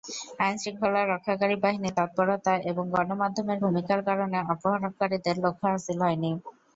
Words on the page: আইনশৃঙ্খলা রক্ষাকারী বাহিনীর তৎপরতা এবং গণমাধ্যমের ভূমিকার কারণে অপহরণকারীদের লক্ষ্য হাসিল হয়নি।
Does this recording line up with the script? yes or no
yes